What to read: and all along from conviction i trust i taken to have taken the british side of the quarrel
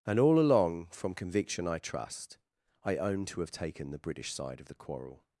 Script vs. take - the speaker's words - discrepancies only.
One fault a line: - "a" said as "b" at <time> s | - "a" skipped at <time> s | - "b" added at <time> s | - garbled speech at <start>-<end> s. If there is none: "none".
- "taken" said as "own" at 3.0 s